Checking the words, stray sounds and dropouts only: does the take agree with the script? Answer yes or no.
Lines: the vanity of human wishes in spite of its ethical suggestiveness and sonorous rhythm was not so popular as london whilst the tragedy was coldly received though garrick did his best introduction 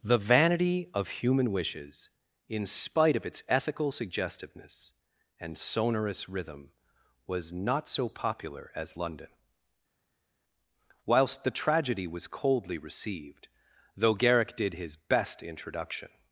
yes